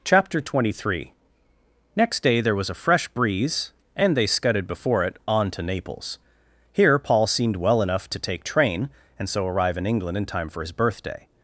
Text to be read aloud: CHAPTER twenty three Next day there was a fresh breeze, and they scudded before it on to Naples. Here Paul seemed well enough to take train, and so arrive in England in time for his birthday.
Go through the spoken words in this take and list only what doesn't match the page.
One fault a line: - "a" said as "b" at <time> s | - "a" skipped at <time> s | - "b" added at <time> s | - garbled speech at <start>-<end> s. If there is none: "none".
none